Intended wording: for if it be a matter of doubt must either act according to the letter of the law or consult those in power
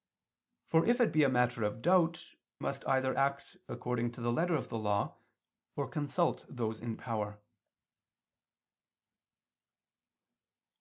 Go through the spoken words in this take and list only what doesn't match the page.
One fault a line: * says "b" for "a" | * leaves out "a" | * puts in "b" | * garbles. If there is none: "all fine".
all fine